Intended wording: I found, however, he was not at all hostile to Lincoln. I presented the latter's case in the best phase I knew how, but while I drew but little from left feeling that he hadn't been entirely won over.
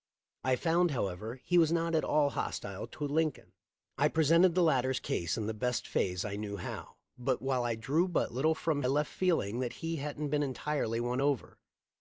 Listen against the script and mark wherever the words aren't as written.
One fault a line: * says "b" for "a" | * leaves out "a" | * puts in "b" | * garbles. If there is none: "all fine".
all fine